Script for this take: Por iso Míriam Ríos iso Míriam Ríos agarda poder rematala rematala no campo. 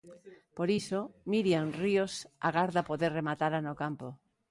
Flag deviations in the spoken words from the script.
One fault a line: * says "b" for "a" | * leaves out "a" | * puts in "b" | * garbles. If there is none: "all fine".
* leaves out "iso Míriam Ríos"
* leaves out "rematala"